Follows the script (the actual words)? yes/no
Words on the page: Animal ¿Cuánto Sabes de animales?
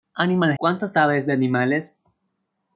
yes